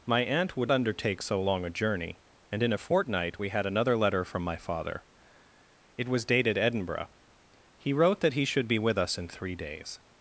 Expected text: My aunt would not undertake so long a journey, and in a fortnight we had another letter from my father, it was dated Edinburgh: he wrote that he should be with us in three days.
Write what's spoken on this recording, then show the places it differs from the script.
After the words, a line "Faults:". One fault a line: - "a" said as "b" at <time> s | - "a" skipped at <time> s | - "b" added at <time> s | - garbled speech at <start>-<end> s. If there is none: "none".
My aunt would undertake so long a journey, and in a fortnight we had another letter from my father, it was dated Edinburgh: he wrote that he should be with us in three days.
Faults:
- "not" skipped at 0.7 s